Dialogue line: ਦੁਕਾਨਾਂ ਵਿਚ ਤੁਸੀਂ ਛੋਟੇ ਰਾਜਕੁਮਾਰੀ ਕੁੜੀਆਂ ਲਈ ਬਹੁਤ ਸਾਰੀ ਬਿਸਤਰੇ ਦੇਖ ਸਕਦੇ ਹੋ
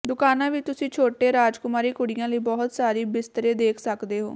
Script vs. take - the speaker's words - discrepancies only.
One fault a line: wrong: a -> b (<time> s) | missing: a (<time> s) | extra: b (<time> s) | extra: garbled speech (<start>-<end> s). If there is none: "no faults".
no faults